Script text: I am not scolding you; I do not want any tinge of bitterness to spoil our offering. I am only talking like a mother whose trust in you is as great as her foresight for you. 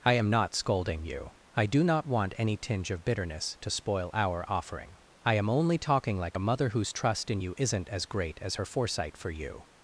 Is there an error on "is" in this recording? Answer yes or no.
yes